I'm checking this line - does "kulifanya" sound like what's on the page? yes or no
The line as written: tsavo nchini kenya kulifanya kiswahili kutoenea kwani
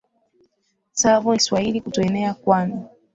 no